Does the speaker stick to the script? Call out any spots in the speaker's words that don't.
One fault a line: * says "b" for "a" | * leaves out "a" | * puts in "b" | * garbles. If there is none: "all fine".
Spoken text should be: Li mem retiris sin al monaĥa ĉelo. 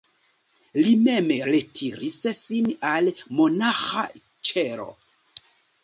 all fine